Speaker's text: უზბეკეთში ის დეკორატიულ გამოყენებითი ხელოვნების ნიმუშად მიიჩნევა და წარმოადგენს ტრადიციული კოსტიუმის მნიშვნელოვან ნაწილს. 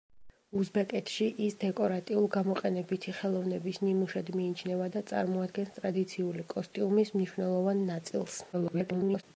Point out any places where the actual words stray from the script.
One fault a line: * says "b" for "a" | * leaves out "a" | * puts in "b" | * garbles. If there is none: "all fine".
* garbles